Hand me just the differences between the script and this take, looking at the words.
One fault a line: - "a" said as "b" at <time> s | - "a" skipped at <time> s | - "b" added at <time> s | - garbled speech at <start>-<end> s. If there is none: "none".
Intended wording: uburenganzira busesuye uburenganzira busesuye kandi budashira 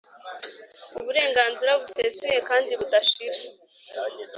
- "uburenganzira busesuye" skipped at 2.4 s